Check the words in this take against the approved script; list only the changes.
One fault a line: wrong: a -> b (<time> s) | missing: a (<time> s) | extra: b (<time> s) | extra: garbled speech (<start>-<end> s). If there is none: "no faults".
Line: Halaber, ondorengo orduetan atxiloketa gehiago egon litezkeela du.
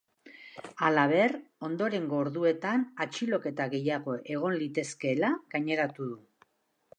extra: gaineratu (5.5 s)